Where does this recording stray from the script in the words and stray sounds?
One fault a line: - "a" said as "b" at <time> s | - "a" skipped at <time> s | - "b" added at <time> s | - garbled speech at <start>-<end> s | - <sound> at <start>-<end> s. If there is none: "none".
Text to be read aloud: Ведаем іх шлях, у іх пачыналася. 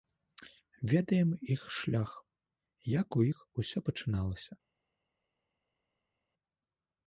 - "як" added at 2.9 s
- "усё" added at 3.6 s